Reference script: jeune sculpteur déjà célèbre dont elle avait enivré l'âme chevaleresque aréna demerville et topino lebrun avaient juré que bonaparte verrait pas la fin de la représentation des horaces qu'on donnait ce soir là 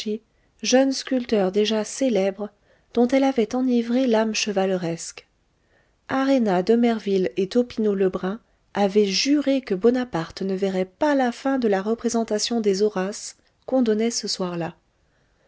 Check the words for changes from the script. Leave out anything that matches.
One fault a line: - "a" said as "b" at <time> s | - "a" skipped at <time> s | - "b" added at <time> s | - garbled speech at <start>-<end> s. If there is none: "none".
- "ne" added at 10.4 s